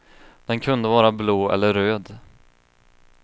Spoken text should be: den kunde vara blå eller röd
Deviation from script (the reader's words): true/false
false